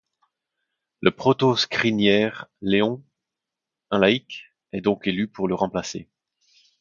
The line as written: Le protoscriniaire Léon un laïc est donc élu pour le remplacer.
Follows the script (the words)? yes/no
yes